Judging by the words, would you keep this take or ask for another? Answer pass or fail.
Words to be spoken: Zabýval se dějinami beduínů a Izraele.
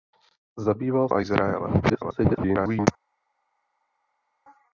fail